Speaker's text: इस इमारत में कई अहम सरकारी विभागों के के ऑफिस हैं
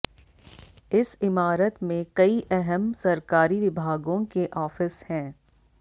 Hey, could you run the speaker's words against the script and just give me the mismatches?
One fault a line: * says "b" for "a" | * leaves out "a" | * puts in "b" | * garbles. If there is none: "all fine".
* leaves out "के"